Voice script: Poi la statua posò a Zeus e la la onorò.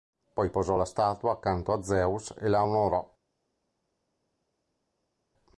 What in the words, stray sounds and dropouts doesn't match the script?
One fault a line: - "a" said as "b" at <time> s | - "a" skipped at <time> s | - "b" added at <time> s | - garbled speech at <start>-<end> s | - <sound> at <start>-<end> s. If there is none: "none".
- "posò" added at 0.5 s
- "posò" said as "accanto" at 1.3 s
- "la" skipped at 2.6 s